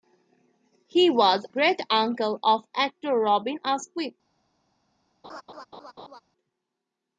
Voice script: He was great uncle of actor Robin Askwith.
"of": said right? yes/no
yes